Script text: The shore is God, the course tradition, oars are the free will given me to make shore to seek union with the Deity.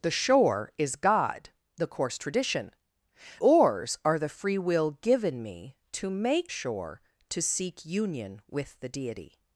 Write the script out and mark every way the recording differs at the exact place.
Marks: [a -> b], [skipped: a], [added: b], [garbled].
The shore is God, the course tradition, oars are the free will given me to make shore to seek union with the Deity.